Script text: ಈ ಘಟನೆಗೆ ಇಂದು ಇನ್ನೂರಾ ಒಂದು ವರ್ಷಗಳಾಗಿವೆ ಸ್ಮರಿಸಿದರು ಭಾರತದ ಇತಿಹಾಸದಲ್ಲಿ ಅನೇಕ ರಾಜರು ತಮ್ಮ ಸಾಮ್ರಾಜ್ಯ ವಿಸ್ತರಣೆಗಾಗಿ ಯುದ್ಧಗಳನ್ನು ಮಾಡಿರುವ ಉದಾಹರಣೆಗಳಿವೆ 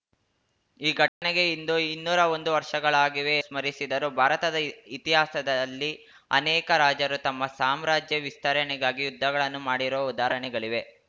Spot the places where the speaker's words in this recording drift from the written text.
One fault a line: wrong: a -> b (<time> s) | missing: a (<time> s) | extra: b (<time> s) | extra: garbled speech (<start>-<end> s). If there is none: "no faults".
no faults